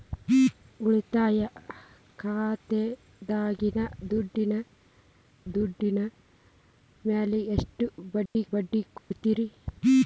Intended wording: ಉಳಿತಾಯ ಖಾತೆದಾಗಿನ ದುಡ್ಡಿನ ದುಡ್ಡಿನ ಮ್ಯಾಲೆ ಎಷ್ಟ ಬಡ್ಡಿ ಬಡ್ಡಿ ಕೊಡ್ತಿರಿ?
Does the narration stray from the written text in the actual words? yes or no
no